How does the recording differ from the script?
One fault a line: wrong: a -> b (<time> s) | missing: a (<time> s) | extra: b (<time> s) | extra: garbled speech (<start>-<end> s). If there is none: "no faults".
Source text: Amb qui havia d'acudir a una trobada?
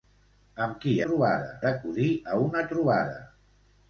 wrong: havia -> trobada (1.1 s)